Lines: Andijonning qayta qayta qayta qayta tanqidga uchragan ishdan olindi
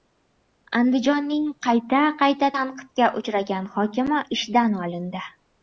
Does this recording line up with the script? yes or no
no